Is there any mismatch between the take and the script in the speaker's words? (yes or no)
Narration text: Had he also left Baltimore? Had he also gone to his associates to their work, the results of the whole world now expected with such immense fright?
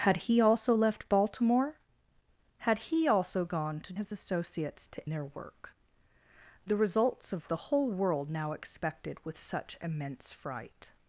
no